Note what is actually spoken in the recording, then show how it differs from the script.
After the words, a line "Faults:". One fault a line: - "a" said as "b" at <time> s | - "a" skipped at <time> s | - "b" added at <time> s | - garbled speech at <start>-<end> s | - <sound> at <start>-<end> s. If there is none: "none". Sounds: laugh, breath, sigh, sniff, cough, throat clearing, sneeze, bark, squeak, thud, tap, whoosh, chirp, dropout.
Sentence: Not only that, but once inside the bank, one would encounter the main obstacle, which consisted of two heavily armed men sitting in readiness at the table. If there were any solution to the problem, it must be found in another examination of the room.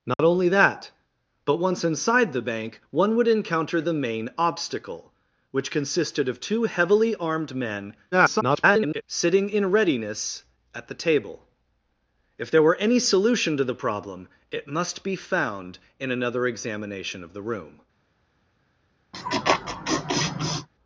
Not only that, but once inside the bank, one would encounter the main obstacle, which consisted of two heavily armed men [garbled] sitting in readiness at the table. If there were any solution to the problem, it must be found in another examination of the room.
Faults:
- dropout at 0.1-0.2 s
- garbled speech at 8.1-9.0 s
- laugh at 19.1-20.7 s